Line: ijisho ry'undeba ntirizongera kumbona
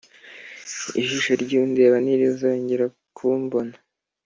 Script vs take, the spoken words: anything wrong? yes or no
no